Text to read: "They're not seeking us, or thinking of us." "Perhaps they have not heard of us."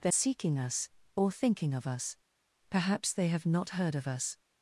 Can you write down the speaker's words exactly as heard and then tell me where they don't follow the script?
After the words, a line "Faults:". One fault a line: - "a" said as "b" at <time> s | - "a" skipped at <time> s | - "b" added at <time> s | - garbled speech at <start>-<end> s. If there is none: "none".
"They're seeking us, or thinking of us." "Perhaps they have not heard of us."
Faults:
- "not" skipped at 0.1 s